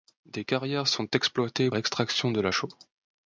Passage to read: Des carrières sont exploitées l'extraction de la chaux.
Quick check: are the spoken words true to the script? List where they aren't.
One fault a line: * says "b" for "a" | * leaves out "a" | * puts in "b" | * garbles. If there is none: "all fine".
all fine